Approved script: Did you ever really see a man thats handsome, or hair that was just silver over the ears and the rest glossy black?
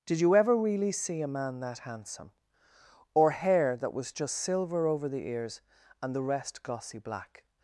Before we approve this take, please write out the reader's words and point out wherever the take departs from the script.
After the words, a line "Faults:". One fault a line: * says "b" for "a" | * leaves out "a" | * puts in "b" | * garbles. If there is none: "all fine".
Did you ever really see a man that handsome, or hair that was just silver over the ears and the rest glossy black?
Faults:
* says "that" for "thats"